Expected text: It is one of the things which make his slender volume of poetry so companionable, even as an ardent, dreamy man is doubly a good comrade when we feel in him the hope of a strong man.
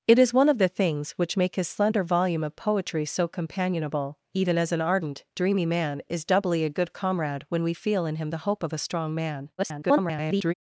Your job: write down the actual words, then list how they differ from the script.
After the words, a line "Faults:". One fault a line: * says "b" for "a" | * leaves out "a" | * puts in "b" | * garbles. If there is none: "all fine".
It is one of the things which make his slender volume of poetry so companionable, even as an ardent, dreamy man is doubly a good comrade when we feel in him the hope of a strong man. [garbled]
Faults:
* garbles